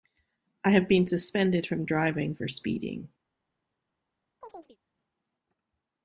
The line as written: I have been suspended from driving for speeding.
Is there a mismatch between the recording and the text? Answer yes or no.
no